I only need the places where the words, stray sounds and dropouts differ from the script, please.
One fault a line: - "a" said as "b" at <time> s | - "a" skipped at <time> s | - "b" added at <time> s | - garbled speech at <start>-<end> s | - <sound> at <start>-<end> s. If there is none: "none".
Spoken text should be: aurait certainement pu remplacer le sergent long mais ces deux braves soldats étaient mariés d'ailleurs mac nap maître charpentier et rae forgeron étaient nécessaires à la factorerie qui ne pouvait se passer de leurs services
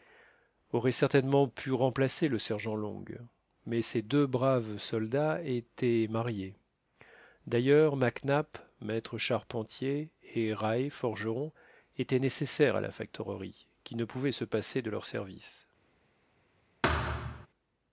- thud at 16.8-17.5 s